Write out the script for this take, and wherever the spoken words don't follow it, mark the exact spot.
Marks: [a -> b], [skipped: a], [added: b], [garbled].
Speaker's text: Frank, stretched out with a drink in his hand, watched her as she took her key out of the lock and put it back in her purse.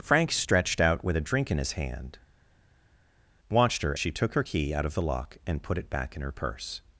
Frank, stretched out with a drink in his hand, watched her [skipped: as] she took her key out of the lock and put it back in her purse.